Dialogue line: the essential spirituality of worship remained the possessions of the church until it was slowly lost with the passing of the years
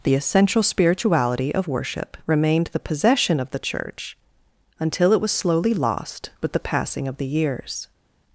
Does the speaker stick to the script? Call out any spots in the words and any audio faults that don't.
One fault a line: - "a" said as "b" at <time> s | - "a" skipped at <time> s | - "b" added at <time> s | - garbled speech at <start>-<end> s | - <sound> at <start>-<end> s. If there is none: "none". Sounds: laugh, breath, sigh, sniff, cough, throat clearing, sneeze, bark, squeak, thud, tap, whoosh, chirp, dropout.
- "possessions" said as "possession" at 2.8 s